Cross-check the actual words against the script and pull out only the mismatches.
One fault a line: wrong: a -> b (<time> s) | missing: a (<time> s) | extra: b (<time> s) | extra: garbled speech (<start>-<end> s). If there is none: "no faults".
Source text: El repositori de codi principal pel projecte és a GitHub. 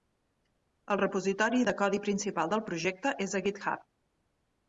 wrong: pel -> del (2.5 s)